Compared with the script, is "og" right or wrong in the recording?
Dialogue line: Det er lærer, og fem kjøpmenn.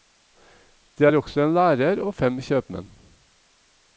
right